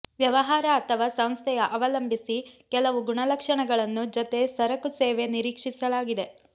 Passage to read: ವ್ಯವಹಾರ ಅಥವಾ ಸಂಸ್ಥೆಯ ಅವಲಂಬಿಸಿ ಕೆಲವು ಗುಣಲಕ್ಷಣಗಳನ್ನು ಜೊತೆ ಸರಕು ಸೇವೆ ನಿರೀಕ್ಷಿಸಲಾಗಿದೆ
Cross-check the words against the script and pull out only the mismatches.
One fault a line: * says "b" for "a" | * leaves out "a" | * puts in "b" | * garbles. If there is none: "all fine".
all fine